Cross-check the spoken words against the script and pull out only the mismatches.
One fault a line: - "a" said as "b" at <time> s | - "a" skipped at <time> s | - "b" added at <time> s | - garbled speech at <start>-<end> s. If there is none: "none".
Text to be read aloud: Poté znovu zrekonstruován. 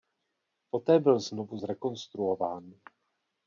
- "byl" added at 1.0 s